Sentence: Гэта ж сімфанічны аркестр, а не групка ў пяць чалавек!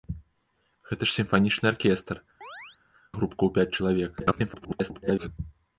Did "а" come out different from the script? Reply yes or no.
yes